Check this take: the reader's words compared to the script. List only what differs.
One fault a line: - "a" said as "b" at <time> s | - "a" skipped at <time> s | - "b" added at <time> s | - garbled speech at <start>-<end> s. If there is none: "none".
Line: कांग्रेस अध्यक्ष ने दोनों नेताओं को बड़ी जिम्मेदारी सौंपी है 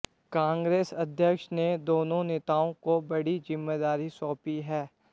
none